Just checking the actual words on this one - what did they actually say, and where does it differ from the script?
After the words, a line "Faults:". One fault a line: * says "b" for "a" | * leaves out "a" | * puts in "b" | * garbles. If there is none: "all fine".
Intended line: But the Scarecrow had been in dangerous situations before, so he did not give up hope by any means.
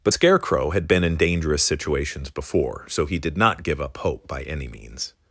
But Scarecrow had been in dangerous situations before, so he did not give up hope by any means.
Faults:
* leaves out "the"